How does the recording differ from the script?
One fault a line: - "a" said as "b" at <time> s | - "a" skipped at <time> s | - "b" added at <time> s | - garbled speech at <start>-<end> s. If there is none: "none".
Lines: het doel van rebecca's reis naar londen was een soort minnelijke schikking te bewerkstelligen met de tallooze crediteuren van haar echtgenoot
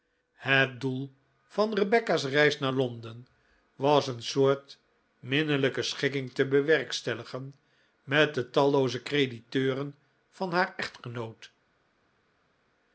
none